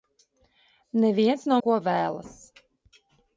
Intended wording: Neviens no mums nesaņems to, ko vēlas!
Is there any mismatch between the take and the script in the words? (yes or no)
yes